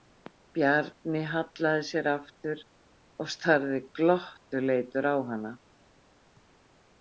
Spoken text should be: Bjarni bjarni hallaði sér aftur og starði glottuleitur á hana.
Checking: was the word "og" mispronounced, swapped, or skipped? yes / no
no